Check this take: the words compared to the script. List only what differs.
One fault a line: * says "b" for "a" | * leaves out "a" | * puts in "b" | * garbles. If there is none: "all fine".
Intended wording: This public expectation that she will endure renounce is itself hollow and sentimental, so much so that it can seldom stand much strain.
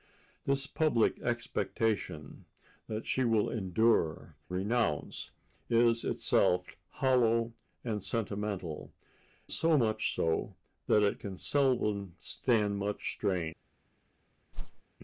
all fine